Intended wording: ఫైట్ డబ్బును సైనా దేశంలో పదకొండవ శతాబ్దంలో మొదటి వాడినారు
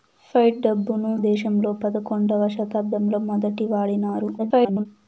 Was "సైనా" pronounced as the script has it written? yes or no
no